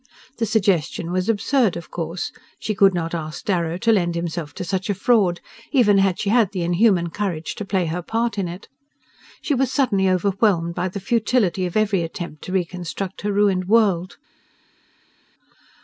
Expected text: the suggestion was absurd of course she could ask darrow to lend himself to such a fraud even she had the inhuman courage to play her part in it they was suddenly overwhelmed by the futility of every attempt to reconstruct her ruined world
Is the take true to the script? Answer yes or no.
no